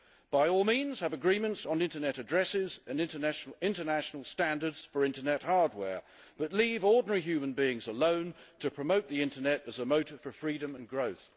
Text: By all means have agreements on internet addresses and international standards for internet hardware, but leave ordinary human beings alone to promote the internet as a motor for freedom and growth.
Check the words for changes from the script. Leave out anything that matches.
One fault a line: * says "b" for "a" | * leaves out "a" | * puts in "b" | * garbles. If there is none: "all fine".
all fine